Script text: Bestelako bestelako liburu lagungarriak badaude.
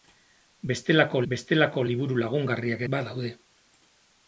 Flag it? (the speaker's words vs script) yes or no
no